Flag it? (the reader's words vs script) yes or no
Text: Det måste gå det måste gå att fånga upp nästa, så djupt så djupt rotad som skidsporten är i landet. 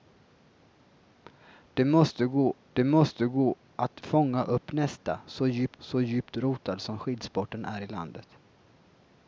no